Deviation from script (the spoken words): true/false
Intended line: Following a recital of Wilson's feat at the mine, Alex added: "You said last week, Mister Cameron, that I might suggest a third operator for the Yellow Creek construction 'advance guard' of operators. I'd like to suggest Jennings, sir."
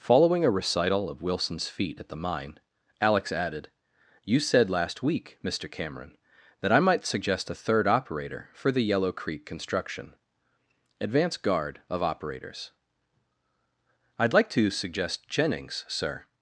false